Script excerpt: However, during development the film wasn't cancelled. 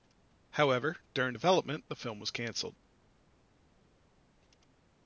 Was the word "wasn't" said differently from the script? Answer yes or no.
yes